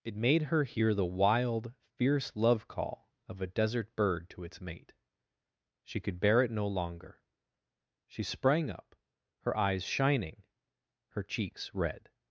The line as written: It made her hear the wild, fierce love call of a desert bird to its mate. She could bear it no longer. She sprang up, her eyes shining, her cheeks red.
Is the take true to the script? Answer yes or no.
yes